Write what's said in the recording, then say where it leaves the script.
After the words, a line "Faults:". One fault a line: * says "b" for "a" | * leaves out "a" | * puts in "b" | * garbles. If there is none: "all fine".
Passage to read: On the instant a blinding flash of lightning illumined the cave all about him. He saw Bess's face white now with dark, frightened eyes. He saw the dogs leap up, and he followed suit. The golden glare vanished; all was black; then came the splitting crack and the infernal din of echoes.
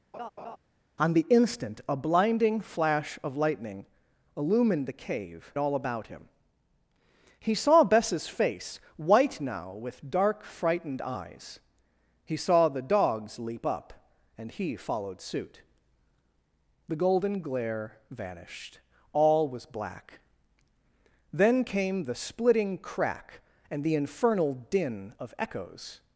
On the instant a blinding flash of lightning illumined the cave all about him. He saw Bess's face white now with dark, frightened eyes. He saw the dogs leap up, and he followed suit. The golden glare vanished; all was black; then came the splitting crack and the infernal din of echoes.
Faults:
all fine